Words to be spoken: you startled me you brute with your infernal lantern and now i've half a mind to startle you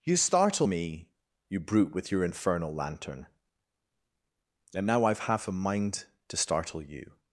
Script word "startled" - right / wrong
wrong